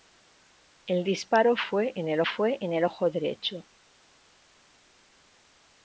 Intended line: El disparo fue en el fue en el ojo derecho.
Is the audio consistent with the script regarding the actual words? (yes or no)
yes